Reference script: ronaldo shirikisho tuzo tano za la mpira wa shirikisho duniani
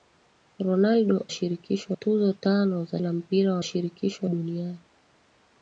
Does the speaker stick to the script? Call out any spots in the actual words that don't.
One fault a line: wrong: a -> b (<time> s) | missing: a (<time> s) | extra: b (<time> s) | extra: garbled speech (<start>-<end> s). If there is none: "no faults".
no faults